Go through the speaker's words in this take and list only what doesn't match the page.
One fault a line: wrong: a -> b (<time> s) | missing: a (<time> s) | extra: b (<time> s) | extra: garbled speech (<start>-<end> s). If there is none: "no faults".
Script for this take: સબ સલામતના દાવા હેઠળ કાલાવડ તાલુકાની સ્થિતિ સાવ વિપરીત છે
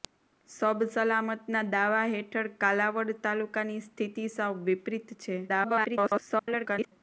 extra: garbled speech (5.5-6.9 s)